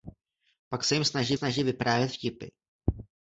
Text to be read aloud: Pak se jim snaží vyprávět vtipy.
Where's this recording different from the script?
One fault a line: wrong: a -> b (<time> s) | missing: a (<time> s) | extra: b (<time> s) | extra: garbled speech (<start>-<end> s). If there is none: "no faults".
extra: snaží (1.3 s)